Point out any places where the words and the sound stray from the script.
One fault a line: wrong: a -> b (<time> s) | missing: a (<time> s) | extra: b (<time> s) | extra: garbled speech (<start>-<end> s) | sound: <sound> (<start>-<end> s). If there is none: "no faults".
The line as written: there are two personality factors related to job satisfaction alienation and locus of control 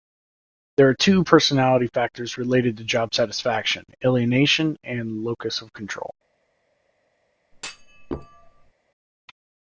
sound: thud (7.5-8.7 s)